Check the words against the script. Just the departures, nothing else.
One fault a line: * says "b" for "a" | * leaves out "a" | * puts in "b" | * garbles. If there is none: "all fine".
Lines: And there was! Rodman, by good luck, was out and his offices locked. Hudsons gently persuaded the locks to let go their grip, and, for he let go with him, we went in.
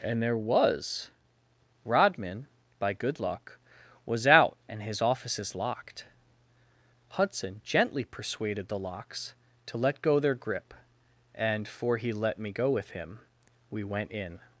* says "Hudson" for "Hudsons"
* puts in "me"